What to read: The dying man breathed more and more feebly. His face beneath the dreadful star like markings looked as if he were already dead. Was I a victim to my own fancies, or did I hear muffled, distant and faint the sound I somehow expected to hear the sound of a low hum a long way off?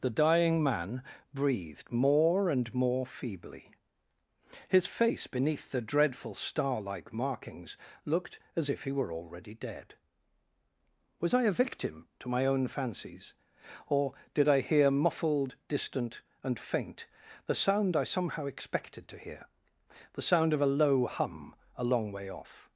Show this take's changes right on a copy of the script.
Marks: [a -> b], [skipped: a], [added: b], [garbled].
The dying man breathed more and more feebly. His face beneath the dreadful star like markings looked as if he were already dead. Was I a victim to my own fancies, or did I hear muffled, distant and faint the sound I somehow expected to hear the sound of a low hum a long way off?